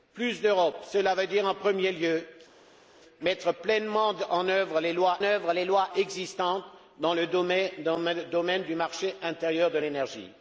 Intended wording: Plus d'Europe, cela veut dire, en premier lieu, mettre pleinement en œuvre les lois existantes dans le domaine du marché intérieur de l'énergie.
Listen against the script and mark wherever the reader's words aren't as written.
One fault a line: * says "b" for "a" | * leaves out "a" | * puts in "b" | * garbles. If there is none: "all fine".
* puts in "œuvre les lois"